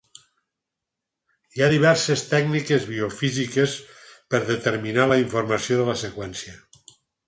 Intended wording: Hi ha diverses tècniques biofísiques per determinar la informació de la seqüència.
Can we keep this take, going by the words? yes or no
yes